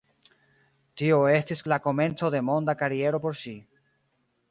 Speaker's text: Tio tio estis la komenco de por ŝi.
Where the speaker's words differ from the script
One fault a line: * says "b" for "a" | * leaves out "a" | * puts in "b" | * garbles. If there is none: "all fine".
* leaves out "tio"
* puts in "monda kariero"